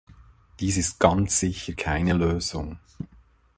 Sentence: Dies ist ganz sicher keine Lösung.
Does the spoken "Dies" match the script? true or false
true